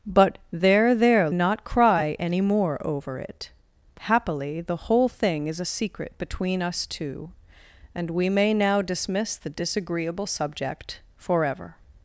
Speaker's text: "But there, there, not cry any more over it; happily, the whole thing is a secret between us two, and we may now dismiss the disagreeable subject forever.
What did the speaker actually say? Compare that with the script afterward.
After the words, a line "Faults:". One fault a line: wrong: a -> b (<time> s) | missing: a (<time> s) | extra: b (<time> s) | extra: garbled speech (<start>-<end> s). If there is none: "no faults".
"But there, there, not cry any more over it; happily, the whole thing is a secret between us two, and we may now dismiss the disagreeable subject forever.
Faults:
no faults